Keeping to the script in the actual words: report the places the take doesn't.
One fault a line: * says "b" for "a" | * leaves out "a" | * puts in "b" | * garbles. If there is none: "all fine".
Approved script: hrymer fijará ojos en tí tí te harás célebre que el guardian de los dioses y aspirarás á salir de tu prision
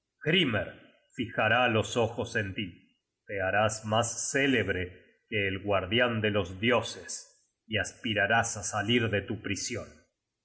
* puts in "los"
* leaves out "tí"
* puts in "mas"